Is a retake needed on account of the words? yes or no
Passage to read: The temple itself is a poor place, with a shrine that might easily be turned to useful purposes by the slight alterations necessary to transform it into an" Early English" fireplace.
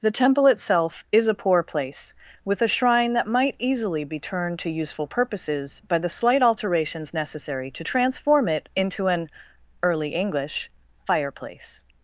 no